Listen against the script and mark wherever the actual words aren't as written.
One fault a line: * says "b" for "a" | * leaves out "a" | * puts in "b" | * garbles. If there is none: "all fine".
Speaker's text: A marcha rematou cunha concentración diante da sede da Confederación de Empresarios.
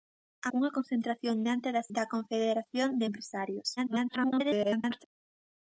* leaves out "marcha rematou"
* leaves out "sede"
* garbles